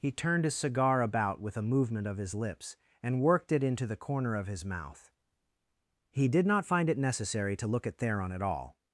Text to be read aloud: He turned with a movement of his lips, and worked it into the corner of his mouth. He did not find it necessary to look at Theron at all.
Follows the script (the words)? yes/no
no